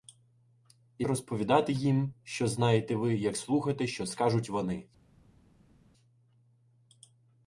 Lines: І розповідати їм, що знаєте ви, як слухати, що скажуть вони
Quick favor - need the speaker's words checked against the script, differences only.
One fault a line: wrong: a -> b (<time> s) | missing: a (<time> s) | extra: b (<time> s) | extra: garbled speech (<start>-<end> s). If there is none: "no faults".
no faults